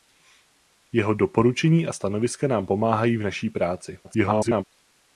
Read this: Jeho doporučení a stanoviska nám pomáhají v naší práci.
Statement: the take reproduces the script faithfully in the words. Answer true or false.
false